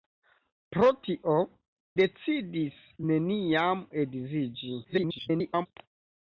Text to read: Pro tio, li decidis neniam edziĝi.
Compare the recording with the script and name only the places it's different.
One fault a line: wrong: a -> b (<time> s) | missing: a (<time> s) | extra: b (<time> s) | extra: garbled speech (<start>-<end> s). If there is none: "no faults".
missing: li (1.4 s)
extra: garbled speech (4.8-5.7 s)